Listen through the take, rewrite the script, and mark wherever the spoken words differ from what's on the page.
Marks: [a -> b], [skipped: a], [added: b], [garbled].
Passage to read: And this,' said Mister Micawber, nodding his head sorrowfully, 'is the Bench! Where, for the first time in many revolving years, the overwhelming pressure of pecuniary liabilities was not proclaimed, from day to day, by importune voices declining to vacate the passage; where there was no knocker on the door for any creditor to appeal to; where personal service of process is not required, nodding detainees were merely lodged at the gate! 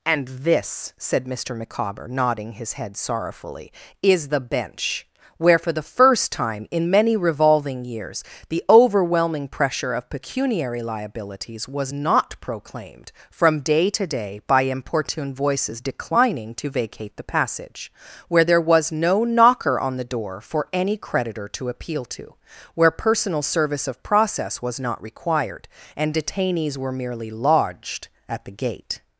And this,' said Mister Micawber, nodding his head sorrowfully, 'is the Bench! Where, for the first time in many revolving years, the overwhelming pressure of pecuniary liabilities was not proclaimed, from day to day, by importune voices declining to vacate the passage; where there was no knocker on the door for any creditor to appeal to; where personal service of process [is -> was] not required, [nodding -> and] detainees were merely lodged at the gate!